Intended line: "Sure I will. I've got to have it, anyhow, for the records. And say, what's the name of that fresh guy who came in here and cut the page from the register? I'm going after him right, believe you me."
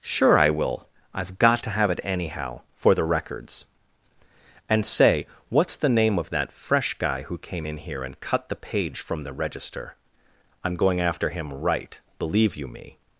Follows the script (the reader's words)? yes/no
yes